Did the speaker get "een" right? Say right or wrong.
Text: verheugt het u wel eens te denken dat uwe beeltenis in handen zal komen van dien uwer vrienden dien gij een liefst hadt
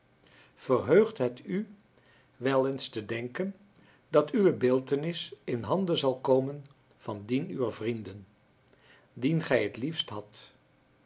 wrong